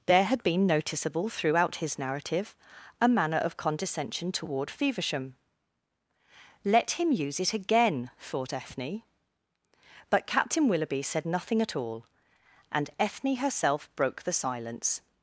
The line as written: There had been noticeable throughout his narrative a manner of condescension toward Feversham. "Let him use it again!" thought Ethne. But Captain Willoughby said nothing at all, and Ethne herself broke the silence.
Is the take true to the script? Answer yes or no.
yes